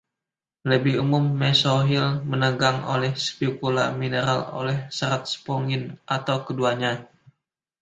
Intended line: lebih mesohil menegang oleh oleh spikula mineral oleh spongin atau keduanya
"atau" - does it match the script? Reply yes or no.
yes